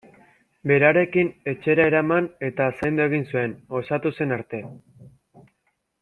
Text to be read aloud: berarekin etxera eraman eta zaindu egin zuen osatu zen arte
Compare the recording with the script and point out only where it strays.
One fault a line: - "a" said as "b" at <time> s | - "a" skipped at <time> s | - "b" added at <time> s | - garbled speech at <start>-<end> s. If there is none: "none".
none